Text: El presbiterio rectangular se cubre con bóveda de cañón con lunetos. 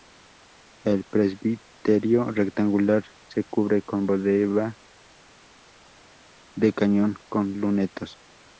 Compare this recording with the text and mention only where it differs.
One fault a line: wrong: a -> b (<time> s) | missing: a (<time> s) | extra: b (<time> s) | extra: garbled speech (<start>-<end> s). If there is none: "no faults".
no faults